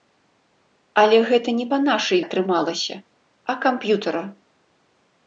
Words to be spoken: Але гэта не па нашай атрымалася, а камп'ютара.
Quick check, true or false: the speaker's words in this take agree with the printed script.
true